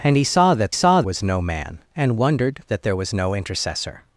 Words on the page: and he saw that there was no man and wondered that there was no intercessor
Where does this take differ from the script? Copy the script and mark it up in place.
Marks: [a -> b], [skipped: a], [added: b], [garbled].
and he saw that [there -> saw] was no man and wondered that there was no intercessor